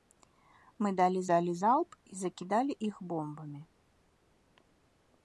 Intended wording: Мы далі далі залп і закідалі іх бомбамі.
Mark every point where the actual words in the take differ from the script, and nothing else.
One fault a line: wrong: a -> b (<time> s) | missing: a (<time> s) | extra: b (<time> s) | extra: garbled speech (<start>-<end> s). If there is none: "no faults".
no faults